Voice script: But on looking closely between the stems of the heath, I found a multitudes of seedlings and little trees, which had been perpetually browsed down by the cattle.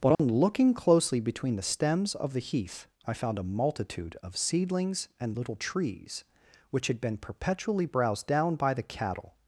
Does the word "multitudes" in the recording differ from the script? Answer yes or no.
yes